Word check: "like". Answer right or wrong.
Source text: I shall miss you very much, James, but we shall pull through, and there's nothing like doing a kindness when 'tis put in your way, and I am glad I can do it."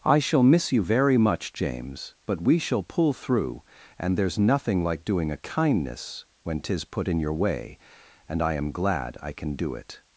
right